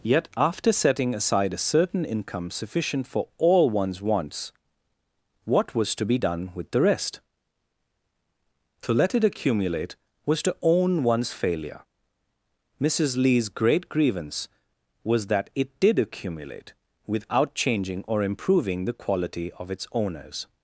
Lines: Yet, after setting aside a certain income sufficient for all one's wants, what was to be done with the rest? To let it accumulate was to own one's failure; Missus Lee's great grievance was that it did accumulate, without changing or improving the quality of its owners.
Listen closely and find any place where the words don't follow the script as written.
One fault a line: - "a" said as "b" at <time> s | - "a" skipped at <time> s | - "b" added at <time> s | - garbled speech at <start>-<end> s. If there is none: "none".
none